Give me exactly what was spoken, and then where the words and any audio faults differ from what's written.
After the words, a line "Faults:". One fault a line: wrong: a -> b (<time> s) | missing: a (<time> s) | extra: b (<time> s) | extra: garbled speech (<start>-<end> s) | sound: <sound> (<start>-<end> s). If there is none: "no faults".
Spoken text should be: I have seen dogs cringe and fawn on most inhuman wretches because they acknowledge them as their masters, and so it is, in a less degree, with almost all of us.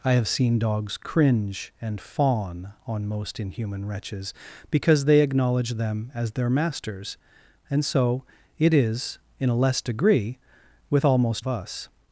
I have seen dogs cringe and fawn on most inhuman wretches because they acknowledge them as their masters, and so it is, in a less degree, with almost of us.
Faults:
missing: all (11.5 s)